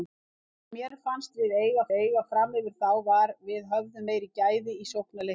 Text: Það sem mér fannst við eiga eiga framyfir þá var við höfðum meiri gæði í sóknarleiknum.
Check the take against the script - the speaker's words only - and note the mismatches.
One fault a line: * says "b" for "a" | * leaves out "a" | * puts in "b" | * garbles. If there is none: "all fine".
all fine